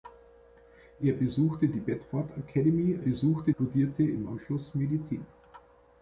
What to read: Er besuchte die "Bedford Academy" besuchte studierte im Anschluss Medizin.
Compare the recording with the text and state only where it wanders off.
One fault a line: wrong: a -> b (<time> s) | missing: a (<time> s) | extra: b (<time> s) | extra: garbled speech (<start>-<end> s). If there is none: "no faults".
no faults